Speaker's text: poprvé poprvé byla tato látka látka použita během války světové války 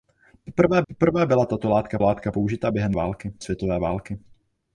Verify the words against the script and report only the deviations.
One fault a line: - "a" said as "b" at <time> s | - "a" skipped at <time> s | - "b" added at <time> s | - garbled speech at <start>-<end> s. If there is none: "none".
none